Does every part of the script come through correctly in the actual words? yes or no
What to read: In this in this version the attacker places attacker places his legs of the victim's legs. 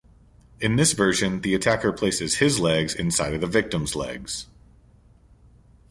no